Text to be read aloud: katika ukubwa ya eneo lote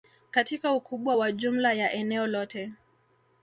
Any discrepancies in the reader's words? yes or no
yes